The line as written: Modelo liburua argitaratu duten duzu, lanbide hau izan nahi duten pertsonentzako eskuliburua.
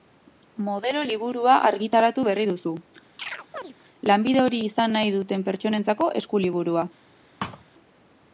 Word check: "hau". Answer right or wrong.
wrong